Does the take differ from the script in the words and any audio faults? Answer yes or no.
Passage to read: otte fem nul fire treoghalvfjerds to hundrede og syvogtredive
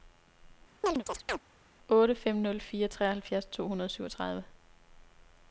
yes